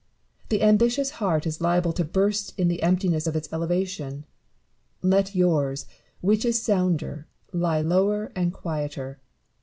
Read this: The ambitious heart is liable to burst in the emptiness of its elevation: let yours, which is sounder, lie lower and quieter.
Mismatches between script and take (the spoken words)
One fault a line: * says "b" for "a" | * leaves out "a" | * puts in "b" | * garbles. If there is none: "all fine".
all fine